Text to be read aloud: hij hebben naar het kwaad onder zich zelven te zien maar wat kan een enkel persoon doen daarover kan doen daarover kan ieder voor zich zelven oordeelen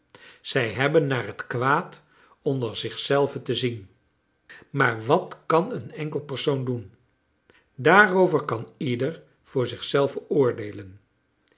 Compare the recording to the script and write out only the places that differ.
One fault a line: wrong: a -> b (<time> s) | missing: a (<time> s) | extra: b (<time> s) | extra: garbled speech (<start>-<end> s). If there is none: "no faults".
wrong: hij -> zij (0.4 s)
missing: doen daarover kan (8.7 s)